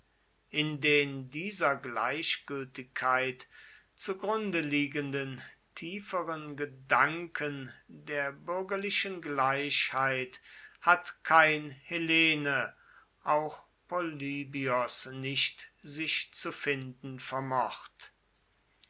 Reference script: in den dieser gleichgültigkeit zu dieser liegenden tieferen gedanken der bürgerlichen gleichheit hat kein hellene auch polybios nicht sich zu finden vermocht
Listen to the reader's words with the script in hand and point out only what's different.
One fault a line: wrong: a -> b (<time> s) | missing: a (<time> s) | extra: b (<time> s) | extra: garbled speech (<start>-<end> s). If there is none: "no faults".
wrong: dieser -> grunde (4.2 s)